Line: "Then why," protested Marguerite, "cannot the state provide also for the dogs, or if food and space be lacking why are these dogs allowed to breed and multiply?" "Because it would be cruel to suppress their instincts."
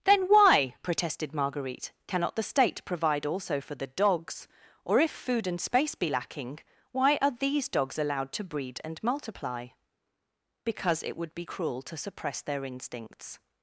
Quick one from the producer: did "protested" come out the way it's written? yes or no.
yes